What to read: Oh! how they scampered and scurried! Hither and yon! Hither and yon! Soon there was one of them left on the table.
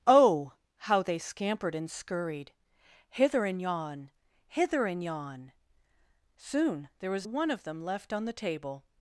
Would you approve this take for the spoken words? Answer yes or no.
yes